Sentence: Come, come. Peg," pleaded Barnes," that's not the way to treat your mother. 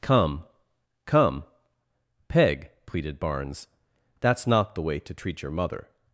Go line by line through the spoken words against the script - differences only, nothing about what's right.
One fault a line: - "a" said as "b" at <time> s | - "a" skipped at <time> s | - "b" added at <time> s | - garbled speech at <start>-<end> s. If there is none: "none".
none